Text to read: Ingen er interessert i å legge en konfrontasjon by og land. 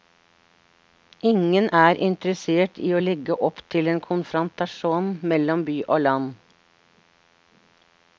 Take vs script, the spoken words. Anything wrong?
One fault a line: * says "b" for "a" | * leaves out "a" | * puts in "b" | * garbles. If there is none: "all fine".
* puts in "opp til"
* puts in "mellom"